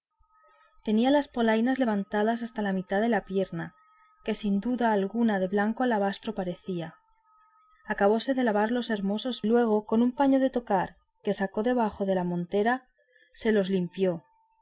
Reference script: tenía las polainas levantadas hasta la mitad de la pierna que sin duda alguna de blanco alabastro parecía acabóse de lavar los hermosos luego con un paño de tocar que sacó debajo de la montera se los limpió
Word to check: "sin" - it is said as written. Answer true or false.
true